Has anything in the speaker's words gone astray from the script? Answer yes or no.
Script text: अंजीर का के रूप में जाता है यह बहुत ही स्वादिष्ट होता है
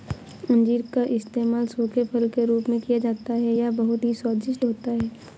yes